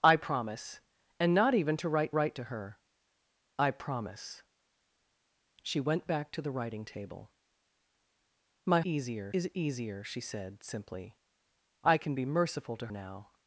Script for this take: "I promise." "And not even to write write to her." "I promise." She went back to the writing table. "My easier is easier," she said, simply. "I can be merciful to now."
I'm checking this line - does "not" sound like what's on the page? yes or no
yes